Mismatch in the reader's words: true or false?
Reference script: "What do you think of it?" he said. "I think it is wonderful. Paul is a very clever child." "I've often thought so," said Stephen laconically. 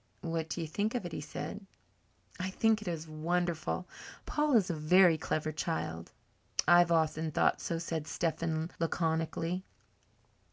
false